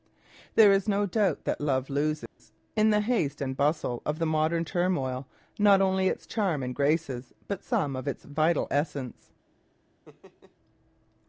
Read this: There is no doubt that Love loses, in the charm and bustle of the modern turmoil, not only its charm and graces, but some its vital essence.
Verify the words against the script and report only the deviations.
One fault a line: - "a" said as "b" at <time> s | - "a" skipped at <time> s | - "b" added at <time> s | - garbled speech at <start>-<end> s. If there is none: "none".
- "charm" said as "haste" at 3.0 s
- "of" added at 8.0 s